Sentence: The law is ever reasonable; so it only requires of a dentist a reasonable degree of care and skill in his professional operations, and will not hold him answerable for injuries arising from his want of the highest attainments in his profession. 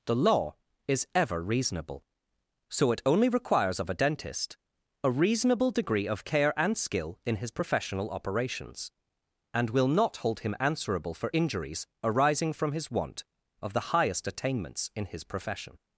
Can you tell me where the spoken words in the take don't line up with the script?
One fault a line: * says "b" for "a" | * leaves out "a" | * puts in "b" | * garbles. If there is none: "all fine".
all fine